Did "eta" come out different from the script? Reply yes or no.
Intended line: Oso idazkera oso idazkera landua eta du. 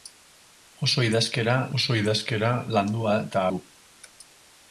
no